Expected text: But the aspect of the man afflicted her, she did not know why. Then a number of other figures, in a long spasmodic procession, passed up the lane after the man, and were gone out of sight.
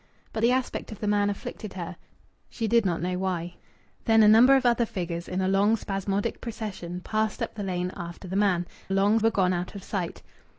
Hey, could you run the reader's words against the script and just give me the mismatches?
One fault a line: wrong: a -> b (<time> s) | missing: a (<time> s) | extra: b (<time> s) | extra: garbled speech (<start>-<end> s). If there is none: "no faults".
wrong: and -> long (8.9 s)